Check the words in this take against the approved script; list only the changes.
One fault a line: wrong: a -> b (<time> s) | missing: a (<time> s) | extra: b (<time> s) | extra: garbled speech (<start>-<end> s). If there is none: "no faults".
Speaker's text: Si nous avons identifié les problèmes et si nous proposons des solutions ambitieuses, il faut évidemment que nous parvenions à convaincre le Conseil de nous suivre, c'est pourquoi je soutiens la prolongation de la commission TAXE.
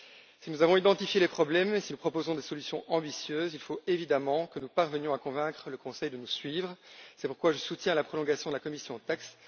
no faults